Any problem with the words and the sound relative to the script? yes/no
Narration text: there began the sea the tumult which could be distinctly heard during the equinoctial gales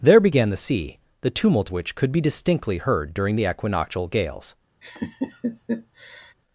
yes